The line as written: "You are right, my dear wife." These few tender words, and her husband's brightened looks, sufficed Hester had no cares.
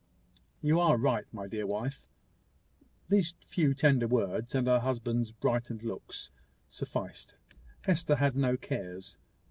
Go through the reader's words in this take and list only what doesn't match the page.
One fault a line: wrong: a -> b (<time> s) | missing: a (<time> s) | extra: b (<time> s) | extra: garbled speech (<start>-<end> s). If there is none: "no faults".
no faults